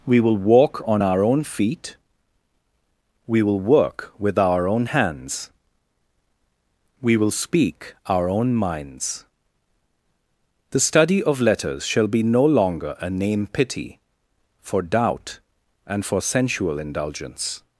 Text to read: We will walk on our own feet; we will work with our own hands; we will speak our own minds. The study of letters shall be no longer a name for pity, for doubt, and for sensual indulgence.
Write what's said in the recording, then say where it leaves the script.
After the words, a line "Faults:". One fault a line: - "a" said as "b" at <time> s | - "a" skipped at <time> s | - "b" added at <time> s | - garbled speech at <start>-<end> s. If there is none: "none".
We will walk on our own feet; we will work with our own hands; we will speak our own minds. The study of letters shall be no longer a name pity, for doubt, and for sensual indulgence.
Faults:
- "for" skipped at 13.5 s